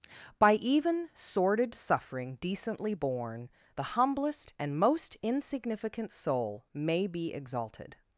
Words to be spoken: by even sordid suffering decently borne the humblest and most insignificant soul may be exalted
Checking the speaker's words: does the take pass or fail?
pass